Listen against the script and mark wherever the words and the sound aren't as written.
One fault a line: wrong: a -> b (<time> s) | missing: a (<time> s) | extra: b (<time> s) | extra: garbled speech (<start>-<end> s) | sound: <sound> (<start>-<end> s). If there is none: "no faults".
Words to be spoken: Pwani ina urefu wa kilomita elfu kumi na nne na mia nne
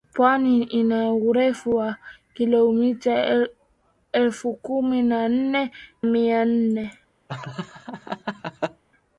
missing: na (5.7 s)
sound: laugh (7.3-8.8 s)